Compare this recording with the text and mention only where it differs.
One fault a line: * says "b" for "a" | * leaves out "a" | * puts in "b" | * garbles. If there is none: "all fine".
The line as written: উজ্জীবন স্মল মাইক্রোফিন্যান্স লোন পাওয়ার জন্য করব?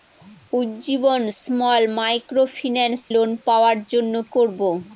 all fine